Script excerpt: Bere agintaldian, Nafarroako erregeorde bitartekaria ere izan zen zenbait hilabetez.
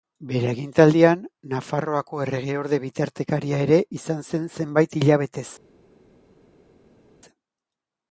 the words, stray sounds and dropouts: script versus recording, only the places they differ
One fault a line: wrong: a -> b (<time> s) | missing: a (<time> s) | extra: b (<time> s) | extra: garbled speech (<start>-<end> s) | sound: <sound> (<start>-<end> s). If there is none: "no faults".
no faults